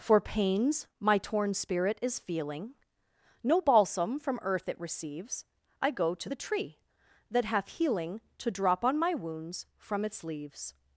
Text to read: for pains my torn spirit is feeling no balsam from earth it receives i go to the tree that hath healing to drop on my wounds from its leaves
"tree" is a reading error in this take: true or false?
false